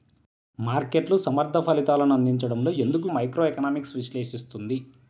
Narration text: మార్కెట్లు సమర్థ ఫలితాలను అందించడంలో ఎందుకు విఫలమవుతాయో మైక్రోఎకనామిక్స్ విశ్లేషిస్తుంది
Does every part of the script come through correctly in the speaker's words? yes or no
no